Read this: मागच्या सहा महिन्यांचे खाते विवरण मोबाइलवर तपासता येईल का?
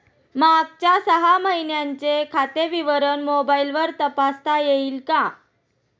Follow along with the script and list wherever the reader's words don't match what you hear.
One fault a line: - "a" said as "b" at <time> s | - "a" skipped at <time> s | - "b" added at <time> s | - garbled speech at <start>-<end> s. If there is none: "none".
none